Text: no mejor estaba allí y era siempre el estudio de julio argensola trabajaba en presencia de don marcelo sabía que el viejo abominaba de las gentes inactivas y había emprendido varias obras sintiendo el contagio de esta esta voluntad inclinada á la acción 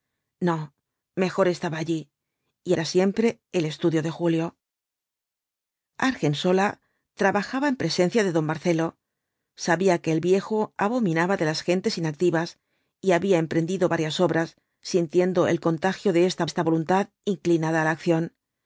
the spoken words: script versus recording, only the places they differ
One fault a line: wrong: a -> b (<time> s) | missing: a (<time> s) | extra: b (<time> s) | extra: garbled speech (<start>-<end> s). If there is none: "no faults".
no faults